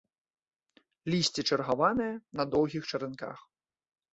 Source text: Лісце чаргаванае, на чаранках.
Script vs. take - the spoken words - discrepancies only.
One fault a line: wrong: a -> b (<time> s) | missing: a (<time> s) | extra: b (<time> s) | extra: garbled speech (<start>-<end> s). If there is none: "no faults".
extra: доўгіх (2.6 s)